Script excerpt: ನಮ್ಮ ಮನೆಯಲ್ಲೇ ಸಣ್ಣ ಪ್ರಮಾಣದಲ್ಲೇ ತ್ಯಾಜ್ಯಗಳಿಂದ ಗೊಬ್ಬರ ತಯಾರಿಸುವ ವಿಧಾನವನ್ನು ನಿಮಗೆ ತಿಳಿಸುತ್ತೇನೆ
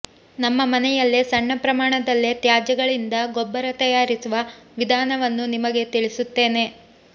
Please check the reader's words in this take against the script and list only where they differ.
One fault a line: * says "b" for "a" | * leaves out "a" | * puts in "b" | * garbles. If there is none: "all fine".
all fine